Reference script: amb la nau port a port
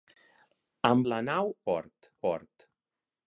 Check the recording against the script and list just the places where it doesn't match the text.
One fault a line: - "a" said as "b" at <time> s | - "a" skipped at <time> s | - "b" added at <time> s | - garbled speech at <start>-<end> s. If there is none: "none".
none